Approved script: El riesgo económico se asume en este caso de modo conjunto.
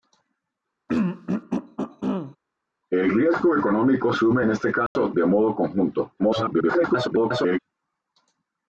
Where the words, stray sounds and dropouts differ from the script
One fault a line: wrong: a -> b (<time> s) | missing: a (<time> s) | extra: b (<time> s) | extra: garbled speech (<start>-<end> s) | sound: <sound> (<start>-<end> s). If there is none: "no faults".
sound: throat clearing (0.9-2.4 s)
missing: se (4.1 s)
sound: dropout (4.9-5.0 s)
extra: garbled speech (6.2-7.6 s)